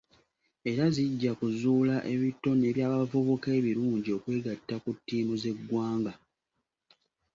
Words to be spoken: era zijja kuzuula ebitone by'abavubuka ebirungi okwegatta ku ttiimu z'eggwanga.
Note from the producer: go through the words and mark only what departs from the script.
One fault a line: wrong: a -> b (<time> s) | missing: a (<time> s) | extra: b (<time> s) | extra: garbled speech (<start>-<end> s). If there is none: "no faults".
no faults